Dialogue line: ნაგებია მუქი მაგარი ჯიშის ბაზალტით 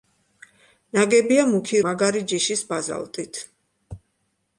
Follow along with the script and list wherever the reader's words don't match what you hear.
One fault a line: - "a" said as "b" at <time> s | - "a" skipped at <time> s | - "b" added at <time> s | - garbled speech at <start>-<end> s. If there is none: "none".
none